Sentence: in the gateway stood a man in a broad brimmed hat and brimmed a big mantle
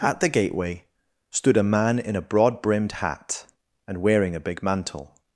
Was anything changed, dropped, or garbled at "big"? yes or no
no